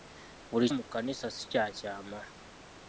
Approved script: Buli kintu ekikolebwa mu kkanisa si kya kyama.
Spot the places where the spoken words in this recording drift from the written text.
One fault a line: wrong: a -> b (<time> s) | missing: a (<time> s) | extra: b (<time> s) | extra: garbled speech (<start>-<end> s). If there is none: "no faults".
missing: kintu ekikolebwa (0.7 s)